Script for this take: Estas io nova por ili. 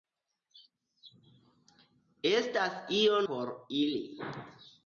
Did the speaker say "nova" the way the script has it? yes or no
no